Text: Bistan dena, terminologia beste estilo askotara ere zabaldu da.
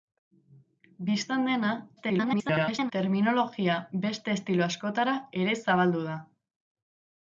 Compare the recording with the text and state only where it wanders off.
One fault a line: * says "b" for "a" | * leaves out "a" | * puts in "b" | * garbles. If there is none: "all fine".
* garbles